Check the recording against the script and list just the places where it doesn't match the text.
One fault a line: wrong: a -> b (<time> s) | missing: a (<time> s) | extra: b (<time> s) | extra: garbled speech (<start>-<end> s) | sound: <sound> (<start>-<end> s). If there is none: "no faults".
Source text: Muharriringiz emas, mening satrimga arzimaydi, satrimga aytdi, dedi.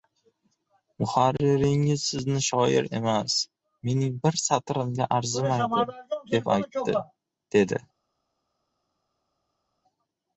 extra: sizni shoir (2.1 s)
extra: bir (4.3 s)
wrong: satrimga -> deb (6.3 s)